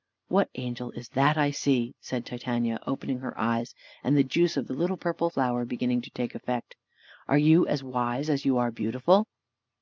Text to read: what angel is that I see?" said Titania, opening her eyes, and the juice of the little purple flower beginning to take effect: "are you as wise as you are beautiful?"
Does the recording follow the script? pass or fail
pass